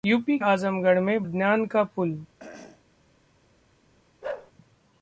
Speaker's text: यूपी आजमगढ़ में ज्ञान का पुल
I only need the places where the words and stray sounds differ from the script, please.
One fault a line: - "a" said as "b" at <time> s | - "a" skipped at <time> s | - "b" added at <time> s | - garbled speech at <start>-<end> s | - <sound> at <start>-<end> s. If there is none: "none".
- throat clearing at 2.4-2.8 s
- bark at 4.2-4.5 s